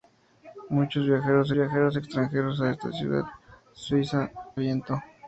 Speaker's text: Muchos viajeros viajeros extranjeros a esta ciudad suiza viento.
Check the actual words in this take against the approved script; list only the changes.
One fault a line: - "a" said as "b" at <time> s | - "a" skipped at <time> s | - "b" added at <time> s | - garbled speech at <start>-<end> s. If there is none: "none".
none